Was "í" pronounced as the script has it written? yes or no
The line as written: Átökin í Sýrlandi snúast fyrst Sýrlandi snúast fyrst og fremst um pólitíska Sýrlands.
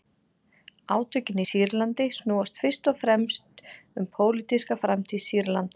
yes